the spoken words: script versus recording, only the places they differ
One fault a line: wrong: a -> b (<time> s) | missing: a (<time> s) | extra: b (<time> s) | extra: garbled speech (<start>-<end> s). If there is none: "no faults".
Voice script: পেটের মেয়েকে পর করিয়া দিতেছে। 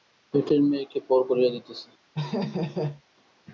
no faults